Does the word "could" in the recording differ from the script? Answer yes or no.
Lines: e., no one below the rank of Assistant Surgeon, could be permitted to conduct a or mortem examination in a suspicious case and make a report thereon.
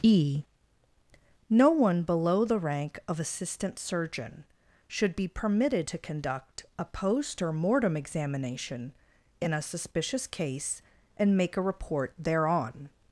yes